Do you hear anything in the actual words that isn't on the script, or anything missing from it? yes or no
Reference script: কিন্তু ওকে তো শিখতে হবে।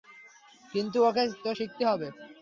no